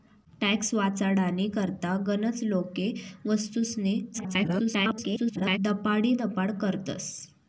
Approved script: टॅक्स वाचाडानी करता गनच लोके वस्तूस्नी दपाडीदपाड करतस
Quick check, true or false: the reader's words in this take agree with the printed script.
false